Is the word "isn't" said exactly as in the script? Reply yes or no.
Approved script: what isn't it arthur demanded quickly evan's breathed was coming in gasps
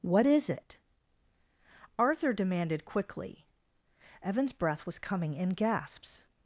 no